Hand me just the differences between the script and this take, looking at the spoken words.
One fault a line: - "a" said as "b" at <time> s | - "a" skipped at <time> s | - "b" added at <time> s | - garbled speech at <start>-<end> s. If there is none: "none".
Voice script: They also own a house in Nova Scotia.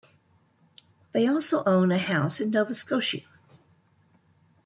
none